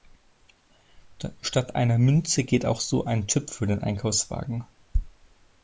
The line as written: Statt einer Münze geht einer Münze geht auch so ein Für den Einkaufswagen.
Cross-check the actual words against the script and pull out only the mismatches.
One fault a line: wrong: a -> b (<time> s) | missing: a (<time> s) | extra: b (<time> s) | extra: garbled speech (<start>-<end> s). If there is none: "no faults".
missing: einer Münze geht (2.6 s)
extra: Chip (3.3 s)